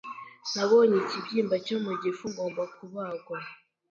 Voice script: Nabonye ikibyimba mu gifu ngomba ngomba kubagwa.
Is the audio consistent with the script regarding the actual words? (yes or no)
no